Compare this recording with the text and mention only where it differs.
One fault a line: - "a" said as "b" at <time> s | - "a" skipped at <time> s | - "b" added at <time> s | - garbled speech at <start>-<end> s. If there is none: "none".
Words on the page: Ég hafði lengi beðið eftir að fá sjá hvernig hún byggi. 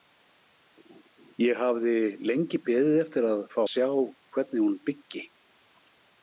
none